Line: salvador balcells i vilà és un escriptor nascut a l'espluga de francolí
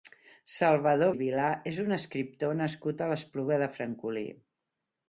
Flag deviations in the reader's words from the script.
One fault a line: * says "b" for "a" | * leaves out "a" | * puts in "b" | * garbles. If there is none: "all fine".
* leaves out "balcells"